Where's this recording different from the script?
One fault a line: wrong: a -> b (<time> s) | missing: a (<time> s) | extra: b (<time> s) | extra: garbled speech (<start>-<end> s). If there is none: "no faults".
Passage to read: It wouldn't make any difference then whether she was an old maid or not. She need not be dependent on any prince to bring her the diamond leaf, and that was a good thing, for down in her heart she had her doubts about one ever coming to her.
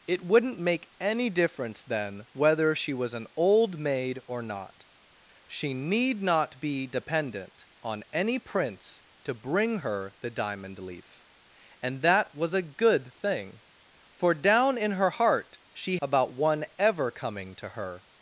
missing: had her doubts (16.0 s)